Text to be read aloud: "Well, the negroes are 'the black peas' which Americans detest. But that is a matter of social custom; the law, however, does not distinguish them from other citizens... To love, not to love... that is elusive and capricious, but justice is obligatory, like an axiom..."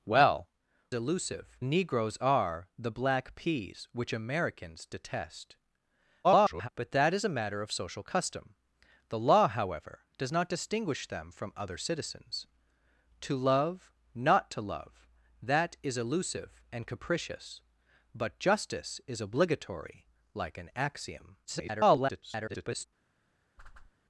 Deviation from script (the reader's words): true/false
true